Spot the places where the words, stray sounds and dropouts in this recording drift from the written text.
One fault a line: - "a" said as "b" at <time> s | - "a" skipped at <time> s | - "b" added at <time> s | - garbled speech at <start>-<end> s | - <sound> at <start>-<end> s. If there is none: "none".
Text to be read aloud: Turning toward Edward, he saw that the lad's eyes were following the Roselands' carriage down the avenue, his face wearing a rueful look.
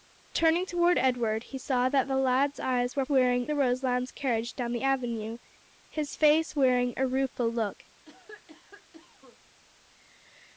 - "following" said as "wearing" at 3.1 s
- cough at 8.0-9.4 s